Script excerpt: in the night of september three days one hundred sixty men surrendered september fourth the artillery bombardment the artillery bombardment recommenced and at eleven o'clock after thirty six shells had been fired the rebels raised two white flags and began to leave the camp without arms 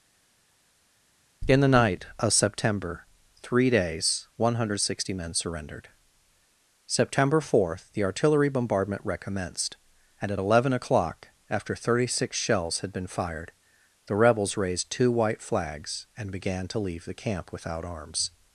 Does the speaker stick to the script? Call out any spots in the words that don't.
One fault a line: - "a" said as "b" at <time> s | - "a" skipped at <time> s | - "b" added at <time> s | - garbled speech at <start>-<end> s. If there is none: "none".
- "the artillery bombardment" skipped at 9.0 s